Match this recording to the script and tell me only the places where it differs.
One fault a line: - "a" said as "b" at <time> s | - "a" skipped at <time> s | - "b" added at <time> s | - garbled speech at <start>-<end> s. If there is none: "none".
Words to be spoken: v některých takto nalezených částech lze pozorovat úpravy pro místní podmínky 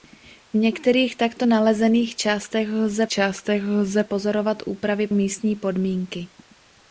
- "částech lze" added at 3.1 s
- "pro" skipped at 5.1 s